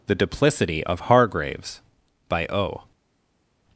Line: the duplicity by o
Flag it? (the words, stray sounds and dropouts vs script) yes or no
yes